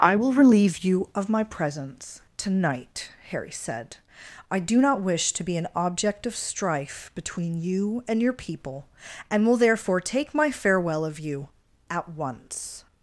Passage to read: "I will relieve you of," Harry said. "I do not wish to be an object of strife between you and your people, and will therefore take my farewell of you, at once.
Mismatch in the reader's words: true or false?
true